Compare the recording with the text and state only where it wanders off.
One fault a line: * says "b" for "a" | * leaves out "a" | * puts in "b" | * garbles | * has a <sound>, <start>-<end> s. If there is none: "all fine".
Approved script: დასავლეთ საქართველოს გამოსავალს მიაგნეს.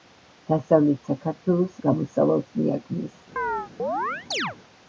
* has a chirp, 3.4-4.6 s